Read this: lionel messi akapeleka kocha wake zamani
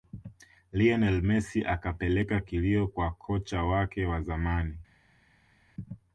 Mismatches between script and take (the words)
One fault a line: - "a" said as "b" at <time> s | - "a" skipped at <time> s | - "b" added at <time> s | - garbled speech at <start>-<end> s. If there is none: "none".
- "kilio kwa" added at 2.4 s
- "wa" added at 4.0 s